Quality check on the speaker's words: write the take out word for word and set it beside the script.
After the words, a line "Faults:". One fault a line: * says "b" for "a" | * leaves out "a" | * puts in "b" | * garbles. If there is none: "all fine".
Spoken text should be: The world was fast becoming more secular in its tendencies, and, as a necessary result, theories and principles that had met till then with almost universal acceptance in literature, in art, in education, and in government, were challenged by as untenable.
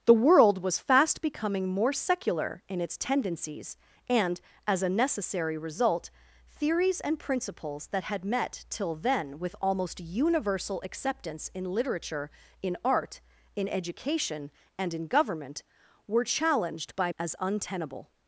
The world was fast becoming more secular in its tendencies, and, as a necessary result, theories and principles that had met till then with almost universal acceptance in literature, in art, in education, and in government, were challenged by as untenable.
Faults:
all fine